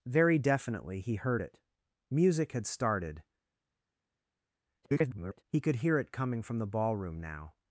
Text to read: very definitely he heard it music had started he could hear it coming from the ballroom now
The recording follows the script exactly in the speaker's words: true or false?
false